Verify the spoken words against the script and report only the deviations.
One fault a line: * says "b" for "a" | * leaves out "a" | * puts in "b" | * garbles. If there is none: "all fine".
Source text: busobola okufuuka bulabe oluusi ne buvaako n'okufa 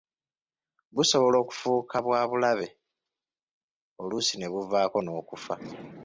* puts in "bwa"